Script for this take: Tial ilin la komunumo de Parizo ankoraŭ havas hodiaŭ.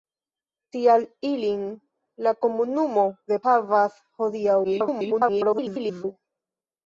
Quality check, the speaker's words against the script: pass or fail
fail